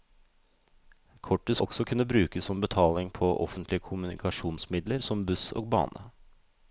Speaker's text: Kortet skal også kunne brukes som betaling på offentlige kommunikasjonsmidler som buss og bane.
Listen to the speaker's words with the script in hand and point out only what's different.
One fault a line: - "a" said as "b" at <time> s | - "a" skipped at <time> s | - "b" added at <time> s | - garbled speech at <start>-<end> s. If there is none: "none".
- "skal" skipped at 1.6 s